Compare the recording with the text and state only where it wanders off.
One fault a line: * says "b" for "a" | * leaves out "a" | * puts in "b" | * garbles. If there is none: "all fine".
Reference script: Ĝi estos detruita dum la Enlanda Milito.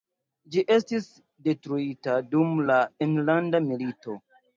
* says "estis" for "estos"